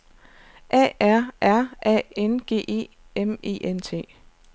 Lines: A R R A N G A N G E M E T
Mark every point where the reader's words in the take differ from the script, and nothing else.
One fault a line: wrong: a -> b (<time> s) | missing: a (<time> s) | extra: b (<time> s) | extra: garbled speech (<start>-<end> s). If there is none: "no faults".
missing: A N G (2.6 s)
extra: N (3.6 s)